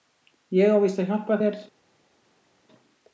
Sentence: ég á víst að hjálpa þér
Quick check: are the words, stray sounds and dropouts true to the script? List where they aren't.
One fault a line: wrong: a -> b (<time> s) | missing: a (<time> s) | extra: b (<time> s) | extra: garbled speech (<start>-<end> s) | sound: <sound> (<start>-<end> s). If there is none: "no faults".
no faults